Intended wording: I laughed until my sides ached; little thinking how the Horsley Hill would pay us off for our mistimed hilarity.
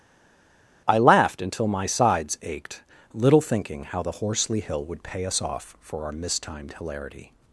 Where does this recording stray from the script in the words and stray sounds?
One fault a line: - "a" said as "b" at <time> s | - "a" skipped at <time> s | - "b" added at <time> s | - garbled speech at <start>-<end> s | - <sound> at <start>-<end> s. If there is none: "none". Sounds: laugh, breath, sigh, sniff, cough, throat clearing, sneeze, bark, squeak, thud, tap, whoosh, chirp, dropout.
none